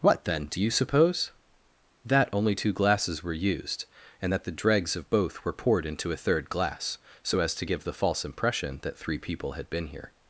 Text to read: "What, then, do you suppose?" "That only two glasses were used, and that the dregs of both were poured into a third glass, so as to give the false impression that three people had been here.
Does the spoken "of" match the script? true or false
true